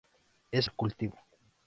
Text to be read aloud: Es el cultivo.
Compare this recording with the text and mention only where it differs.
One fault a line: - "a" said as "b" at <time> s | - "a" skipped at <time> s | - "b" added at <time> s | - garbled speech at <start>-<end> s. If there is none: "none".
none